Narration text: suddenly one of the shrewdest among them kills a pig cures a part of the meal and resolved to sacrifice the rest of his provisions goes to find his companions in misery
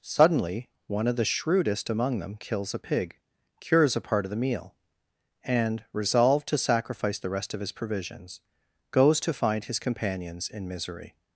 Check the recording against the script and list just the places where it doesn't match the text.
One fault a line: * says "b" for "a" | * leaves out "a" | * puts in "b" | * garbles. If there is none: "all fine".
all fine